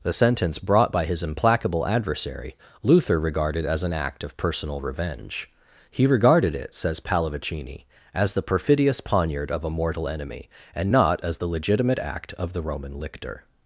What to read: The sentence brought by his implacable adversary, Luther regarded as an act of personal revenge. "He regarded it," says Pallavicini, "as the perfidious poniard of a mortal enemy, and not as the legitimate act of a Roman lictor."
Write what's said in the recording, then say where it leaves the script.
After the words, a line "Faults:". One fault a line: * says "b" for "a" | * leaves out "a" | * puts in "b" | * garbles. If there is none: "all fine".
The sentence brought by his implacable adversary, Luther regarded as an act of personal revenge. "He regarded it," says Pallavicini, "as the perfidious poniard of a mortal enemy, and not as the legitimate act of the Roman lictor."
Faults:
* says "the" for "a"